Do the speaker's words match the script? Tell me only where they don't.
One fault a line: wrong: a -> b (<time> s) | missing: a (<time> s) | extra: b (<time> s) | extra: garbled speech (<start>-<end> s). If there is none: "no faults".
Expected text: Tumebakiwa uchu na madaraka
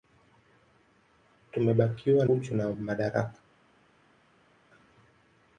no faults